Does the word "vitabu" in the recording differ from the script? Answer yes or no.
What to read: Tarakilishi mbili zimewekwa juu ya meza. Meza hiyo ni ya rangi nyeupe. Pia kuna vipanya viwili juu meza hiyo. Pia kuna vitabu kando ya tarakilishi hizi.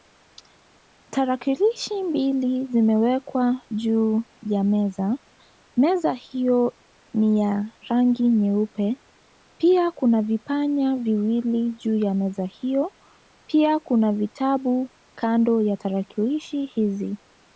no